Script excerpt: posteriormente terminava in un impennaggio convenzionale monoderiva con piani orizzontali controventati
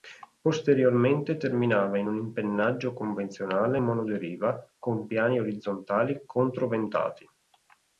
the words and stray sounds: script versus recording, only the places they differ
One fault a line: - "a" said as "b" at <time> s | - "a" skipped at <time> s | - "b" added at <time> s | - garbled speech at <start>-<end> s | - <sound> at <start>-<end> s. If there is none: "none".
none